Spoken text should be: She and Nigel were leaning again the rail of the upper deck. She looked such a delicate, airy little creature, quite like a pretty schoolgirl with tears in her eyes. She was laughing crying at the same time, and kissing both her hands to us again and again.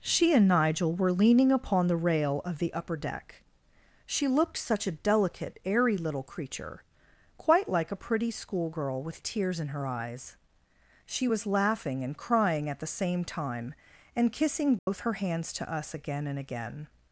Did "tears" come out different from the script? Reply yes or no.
no